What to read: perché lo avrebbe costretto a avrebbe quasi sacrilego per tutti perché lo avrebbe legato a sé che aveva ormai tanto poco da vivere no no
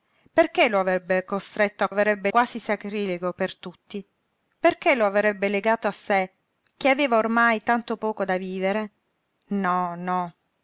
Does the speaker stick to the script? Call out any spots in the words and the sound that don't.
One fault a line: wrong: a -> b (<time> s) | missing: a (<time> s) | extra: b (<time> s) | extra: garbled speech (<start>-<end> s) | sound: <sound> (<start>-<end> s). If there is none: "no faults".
no faults